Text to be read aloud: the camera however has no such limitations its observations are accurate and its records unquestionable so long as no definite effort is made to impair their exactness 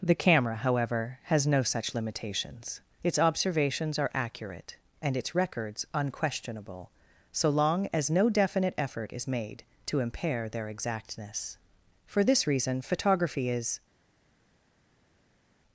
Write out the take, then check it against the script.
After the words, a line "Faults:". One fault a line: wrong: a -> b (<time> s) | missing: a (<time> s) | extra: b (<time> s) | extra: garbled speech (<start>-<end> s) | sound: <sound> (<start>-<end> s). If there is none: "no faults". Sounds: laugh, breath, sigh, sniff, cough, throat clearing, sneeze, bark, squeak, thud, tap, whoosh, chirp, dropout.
the camera however has no such limitations its observations are accurate and its records unquestionable so long as no definite effort is made to impair their exactness for this reason photography is
Faults:
extra: for this reason photography is (12.1 s)